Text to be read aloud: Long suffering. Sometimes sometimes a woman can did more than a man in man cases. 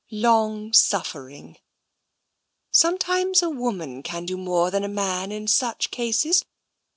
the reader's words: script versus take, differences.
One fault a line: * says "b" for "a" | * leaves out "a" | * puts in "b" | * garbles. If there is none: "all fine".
* leaves out "sometimes"
* says "do" for "did"
* says "such" for "man"